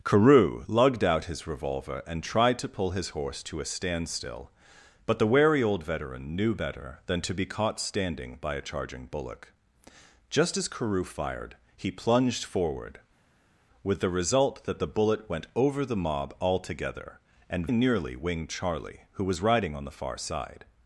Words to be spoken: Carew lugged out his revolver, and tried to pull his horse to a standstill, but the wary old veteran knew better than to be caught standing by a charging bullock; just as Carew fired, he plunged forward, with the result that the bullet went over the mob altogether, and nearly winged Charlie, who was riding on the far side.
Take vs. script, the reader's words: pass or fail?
pass